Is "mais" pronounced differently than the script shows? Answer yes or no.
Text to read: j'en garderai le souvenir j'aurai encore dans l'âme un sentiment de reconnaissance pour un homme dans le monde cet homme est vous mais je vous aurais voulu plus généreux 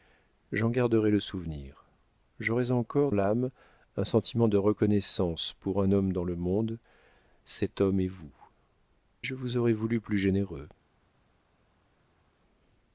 yes